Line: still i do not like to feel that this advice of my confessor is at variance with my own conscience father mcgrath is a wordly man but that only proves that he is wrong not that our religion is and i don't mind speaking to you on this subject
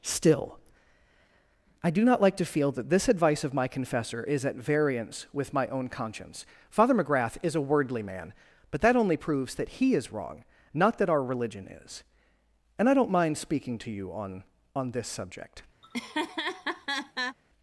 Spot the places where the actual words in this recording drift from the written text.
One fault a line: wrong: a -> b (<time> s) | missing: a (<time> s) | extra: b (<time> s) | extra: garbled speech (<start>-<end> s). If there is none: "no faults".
extra: on (14.7 s)